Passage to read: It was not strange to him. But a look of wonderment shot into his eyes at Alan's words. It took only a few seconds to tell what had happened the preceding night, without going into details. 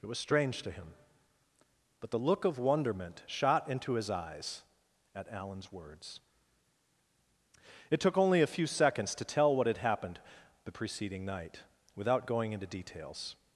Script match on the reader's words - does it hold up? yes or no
no